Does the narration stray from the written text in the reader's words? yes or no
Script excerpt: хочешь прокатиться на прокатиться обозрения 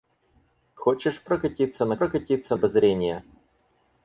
no